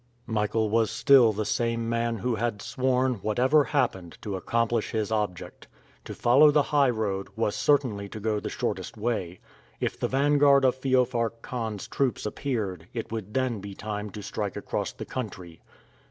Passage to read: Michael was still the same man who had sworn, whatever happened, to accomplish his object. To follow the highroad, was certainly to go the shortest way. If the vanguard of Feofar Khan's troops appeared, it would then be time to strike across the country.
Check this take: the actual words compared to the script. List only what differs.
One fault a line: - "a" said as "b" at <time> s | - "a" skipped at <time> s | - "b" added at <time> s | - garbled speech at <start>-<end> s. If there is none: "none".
none